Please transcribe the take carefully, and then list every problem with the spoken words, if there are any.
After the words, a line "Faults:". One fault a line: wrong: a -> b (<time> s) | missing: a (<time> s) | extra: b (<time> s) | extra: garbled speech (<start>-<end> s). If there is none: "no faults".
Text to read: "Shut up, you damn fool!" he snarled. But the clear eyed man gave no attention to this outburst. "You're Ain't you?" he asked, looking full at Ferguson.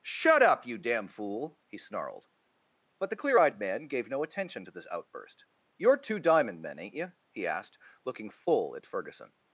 "Shut up, you damn fool!" he snarled. But the clear eyed man gave no attention to this outburst. "You're Two Diamond men, ain't you?" he asked, looking full at Ferguson.
Faults:
extra: Two Diamond men (6.0 s)